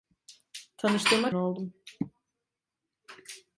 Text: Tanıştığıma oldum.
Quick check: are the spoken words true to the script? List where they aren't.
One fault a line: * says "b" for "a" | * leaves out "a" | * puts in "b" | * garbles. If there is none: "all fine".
all fine